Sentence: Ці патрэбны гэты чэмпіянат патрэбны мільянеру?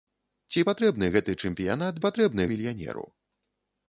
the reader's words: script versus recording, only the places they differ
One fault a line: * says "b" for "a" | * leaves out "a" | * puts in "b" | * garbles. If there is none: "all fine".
all fine